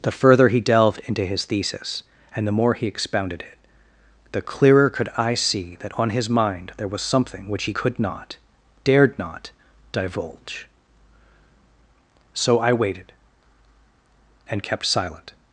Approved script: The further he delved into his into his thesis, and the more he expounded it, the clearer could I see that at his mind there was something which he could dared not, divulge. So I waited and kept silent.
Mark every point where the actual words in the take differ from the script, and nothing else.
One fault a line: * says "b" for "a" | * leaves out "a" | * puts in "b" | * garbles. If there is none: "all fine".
* leaves out "into his"
* says "on" for "at"
* puts in "not"